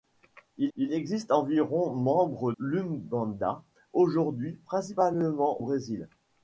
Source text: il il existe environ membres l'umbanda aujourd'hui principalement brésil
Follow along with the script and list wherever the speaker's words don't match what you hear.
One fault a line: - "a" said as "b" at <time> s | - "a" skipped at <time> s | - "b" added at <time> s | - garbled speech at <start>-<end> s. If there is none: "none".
none